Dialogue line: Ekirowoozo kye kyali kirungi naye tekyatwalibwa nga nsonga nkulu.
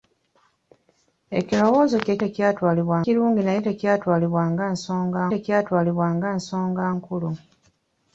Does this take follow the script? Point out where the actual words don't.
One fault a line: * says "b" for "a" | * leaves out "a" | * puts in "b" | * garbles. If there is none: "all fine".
* says "tekyatwalibwa" for "kyali"
* puts in "tekyatwalibwa nga nsonga"